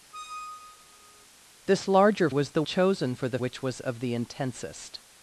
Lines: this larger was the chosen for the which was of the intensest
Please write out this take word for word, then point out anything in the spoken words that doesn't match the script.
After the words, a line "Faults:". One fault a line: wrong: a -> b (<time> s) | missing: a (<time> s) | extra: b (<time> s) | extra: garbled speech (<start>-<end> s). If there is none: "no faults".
this larger was the chosen for the which was of the intensest
Faults:
no faults